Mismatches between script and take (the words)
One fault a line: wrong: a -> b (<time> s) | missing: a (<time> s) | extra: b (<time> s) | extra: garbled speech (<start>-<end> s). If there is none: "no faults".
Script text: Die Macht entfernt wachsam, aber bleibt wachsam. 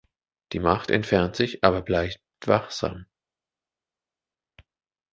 wrong: wachsam -> sich (1.4 s)